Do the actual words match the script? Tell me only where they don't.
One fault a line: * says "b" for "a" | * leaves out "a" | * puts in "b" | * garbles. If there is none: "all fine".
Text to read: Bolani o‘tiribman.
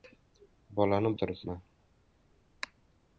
all fine